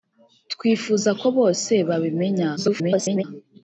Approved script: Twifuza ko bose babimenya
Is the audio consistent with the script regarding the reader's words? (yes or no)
no